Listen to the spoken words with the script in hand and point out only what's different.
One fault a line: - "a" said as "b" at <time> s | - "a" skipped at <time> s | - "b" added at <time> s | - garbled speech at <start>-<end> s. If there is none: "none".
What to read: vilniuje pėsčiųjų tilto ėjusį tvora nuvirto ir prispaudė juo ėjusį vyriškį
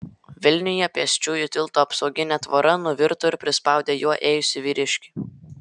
- "ėjusį" said as "apsauginė" at 1.8 s